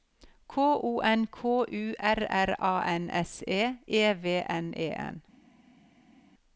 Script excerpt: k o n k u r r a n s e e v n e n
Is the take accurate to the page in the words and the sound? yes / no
yes